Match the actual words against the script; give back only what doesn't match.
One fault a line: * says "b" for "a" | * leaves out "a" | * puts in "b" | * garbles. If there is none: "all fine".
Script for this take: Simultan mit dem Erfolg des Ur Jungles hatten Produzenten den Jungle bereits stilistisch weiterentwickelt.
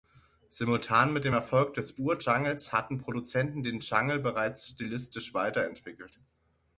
all fine